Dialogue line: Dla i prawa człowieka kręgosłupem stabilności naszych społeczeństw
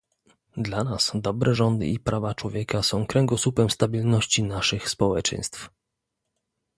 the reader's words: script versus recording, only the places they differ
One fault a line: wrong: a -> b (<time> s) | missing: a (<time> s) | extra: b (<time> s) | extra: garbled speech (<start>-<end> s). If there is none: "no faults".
extra: nas dobre rządy (0.8 s)
extra: są (2.8 s)